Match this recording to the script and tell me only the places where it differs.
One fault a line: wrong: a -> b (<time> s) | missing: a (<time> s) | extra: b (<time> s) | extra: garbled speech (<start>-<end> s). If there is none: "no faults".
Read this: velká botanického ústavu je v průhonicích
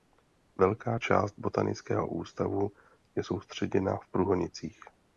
extra: část (1.0 s)
extra: soustředěna (3.2 s)